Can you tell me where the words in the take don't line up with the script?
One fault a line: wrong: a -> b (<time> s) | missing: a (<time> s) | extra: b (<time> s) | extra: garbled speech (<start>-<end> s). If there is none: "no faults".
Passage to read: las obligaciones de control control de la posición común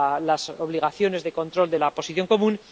missing: control (1.7 s)